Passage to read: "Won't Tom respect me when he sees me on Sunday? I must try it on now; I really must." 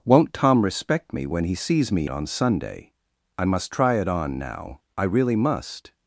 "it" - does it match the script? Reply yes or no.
yes